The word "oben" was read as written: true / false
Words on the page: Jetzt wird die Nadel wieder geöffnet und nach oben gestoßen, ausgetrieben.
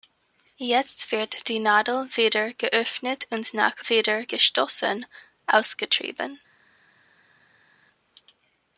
false